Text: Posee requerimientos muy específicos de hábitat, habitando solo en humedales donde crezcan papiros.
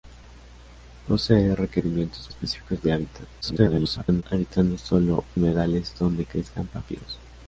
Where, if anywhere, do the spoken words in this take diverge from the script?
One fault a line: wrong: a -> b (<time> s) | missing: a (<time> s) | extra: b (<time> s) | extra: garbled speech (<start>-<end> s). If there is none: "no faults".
missing: muy (2.3 s)
extra: garbled speech (3.4-4.2 s)
missing: en (5.2 s)